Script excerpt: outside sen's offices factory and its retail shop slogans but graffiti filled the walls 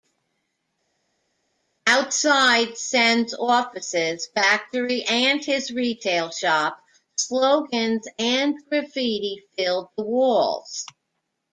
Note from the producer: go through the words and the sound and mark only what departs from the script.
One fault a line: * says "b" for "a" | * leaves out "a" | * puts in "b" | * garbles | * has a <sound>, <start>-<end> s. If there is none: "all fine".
* says "his" for "its"
* says "and" for "but"